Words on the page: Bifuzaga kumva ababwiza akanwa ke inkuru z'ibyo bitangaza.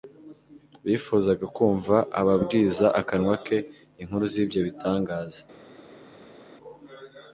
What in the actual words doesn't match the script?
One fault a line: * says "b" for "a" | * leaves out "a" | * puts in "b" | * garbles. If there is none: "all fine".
all fine